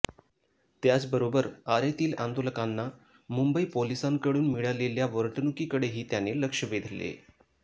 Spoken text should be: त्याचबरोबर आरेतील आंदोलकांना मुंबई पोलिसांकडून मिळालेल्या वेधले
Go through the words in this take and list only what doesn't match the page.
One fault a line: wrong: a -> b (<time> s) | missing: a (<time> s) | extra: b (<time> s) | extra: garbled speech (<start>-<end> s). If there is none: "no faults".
extra: वर्तणुकीकडेही त्याने लक्ष (5.1 s)